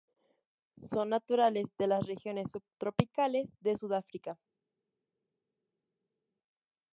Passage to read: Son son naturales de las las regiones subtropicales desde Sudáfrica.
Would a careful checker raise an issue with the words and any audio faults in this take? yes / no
yes